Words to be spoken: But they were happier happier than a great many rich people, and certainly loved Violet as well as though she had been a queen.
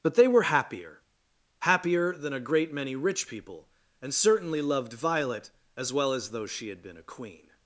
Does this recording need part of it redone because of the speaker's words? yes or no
no